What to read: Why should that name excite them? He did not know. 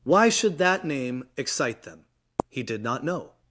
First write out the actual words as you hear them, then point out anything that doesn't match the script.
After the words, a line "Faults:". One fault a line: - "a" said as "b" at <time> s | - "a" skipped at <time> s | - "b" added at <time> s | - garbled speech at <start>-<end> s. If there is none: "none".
Why should that name excite them? He did not know.
Faults:
none